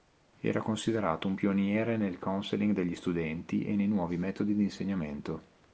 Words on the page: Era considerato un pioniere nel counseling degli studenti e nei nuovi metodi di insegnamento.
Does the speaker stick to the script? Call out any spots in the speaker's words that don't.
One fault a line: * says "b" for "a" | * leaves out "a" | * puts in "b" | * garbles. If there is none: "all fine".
all fine